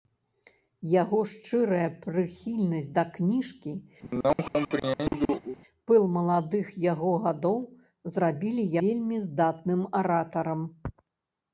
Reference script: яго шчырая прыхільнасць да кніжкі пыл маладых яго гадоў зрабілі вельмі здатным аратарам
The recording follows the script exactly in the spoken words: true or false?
true